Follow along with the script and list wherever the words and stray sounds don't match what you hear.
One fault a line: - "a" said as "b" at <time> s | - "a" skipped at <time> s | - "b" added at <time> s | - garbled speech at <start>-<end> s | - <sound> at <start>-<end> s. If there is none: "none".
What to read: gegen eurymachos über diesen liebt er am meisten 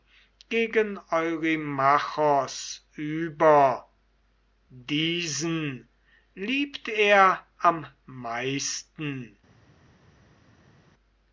none